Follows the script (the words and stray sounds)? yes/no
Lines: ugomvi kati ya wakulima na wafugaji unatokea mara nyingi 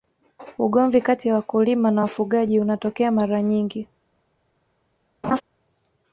no